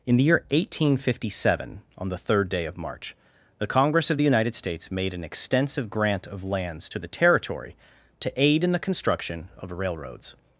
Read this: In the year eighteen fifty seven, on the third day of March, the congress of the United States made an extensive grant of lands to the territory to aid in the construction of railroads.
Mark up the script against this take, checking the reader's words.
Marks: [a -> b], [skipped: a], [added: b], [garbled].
In the year eighteen fifty seven, on the third day of March, the congress of the United States made an extensive grant of lands to the territory to aid in the construction of railroads.